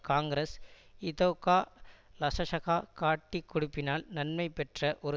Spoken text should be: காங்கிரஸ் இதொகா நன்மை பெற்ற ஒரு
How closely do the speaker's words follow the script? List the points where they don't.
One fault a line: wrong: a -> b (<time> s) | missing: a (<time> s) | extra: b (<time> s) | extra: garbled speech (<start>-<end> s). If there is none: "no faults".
extra: லசசக காட்டிக் கொடுப்பினால் (2.2 s)